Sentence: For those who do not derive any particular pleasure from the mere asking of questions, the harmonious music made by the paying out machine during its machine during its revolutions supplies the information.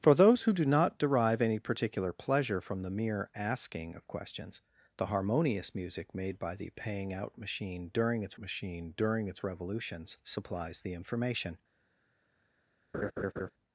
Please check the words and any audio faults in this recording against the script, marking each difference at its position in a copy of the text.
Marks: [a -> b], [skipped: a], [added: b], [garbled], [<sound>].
For those who do not derive any particular pleasure from the mere asking of questions, the harmonious music made by the paying out machine during its machine during its revolutions supplies the information. [laugh]